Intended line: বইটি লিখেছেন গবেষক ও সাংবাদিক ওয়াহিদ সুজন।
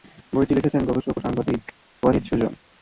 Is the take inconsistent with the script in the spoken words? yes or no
no